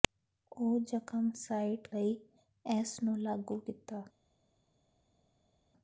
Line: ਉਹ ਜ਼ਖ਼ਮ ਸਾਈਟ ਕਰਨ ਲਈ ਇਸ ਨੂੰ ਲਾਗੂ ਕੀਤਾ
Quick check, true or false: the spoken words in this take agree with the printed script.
false